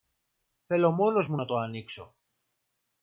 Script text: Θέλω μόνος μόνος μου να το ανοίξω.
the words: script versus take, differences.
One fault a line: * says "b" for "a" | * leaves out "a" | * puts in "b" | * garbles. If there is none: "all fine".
* leaves out "μόνος"